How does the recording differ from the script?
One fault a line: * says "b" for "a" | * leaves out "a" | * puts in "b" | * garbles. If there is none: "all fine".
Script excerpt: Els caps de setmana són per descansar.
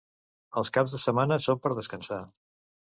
all fine